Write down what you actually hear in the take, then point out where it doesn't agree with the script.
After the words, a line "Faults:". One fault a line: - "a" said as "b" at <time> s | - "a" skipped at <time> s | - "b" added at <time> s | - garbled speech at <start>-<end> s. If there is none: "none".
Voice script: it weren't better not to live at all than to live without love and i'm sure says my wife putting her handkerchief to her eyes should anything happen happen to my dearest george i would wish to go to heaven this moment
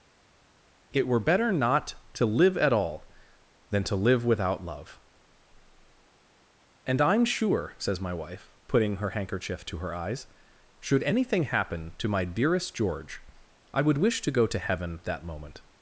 it were better not to live at all than to live without love and i'm sure says my wife putting her handkerchief to her eyes should anything happen to my dearest george i would wish to go to heaven that moment
Faults:
- "weren't" said as "were" at 1.1 s
- "happen" skipped at 11.9 s
- "this" said as "that" at 15.0 s